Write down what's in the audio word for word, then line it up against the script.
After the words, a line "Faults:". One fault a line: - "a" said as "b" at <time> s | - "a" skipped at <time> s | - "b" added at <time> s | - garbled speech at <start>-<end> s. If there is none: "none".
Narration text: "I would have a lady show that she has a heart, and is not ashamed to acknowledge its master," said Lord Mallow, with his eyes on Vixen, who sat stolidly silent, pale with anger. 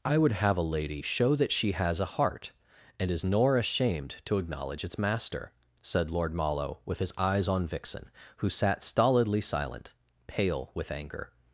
"I would have a lady show that she has a heart, and is nor ashamed to acknowledge its master," said Lord Mallow, with his eyes on Vixen, who sat stolidly silent, pale with anger.
Faults:
- "not" said as "nor" at 3.2 s